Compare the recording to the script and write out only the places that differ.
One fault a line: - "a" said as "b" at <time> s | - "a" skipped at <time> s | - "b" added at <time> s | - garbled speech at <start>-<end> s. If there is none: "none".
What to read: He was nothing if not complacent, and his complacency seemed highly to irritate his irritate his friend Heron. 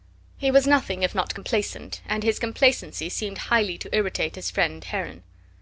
- "irritate his" skipped at 4.5 s